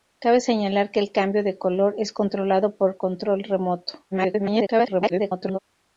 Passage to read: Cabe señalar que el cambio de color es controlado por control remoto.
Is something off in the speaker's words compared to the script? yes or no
yes